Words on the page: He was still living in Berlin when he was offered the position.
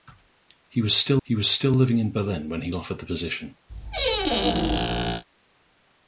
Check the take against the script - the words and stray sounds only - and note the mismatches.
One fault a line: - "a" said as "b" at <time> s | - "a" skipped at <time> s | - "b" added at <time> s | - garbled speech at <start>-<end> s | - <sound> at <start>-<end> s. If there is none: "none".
- "he was still" added at 1.2 s
- "was" skipped at 2.7 s
- squeak at 3.7-5.2 s